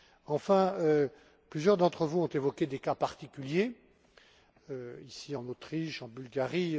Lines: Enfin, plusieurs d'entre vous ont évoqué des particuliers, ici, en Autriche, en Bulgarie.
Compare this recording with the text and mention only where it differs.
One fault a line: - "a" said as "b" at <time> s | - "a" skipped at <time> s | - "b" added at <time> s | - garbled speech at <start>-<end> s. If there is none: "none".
- "cas" added at 2.8 s